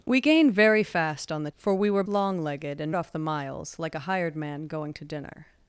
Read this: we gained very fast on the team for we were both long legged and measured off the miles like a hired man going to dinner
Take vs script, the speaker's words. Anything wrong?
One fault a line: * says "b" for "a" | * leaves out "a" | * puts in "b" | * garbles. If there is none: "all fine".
* leaves out "team"
* leaves out "both"
* leaves out "measured"